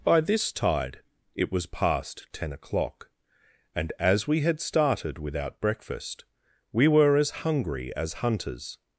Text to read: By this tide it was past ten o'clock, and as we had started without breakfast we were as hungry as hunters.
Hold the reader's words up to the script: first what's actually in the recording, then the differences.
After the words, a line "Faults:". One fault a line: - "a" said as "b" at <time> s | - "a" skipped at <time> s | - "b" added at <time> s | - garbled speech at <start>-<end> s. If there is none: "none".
By this tide it was past ten o'clock, and as we had started without breakfast we were as hungry as hunters.
Faults:
none